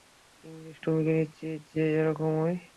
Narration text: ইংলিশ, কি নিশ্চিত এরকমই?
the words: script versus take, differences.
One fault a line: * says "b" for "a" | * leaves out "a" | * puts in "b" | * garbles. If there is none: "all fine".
* puts in "তুমি"
* puts in "যে"